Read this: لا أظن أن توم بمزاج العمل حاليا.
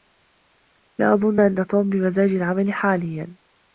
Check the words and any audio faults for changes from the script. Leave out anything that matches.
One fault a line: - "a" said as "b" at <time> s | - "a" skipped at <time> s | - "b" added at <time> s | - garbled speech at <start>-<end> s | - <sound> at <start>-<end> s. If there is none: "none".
none